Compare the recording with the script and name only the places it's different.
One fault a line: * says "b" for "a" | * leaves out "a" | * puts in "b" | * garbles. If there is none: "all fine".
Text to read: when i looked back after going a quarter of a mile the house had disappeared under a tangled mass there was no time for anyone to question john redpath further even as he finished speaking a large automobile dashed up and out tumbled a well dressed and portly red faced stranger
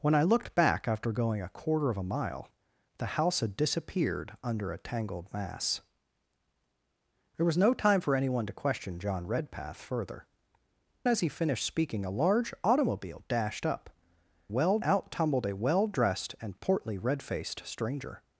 * leaves out "even"
* says "well" for "and"